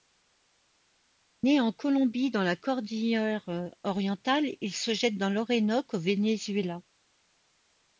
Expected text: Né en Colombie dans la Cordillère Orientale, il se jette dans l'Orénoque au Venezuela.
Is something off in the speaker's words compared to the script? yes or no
no